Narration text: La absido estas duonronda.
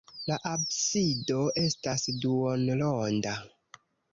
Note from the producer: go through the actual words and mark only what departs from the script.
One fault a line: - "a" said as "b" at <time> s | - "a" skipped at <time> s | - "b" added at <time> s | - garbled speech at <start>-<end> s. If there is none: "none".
none